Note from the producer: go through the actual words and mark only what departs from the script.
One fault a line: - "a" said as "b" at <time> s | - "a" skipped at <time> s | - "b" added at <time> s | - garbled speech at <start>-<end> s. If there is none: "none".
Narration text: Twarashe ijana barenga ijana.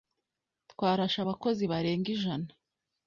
- "ijana" said as "abakozi" at 1.2 s